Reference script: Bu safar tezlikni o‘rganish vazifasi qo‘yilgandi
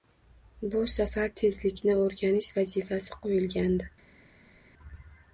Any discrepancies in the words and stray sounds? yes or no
no